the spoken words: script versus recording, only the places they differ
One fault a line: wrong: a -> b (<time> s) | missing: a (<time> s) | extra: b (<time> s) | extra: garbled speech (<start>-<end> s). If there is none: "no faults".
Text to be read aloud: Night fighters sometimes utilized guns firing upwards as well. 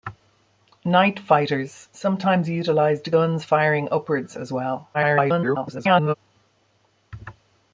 extra: garbled speech (4.9-6.1 s)